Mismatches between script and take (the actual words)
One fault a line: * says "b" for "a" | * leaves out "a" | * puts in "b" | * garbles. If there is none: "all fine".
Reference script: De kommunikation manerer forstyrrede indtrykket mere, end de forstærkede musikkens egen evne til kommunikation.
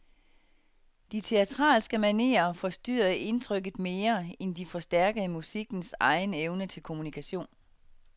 * says "teatralske" for "kommunikation"